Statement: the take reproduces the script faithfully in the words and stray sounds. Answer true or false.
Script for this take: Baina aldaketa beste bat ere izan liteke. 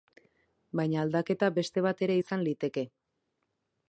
true